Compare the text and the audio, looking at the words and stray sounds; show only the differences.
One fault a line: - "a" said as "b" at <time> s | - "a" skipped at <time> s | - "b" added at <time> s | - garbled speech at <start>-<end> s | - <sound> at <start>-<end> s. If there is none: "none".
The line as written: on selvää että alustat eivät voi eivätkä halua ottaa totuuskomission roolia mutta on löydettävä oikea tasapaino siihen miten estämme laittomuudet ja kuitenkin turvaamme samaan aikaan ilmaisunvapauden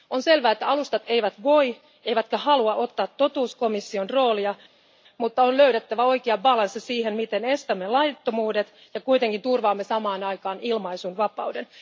none